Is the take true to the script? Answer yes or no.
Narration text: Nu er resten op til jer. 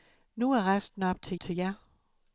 no